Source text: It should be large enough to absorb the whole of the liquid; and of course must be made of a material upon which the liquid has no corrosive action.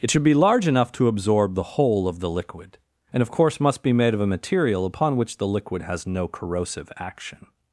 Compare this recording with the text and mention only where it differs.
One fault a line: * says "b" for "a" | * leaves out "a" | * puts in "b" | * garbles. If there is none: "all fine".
all fine